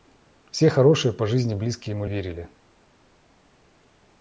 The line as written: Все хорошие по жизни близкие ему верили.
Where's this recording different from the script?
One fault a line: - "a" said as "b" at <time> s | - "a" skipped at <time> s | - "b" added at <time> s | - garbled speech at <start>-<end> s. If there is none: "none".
none